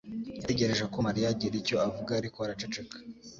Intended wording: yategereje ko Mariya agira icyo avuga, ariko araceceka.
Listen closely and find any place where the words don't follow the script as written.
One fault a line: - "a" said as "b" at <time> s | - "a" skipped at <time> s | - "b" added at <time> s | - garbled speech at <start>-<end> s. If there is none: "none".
none